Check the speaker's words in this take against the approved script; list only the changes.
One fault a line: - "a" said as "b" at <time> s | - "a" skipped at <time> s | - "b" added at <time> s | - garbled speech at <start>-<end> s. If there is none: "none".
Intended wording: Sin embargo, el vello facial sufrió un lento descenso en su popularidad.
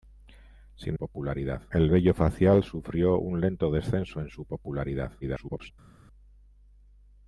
- "embargo" said as "popularidad" at 1.0 s
- garbled speech at 5.2-5.7 s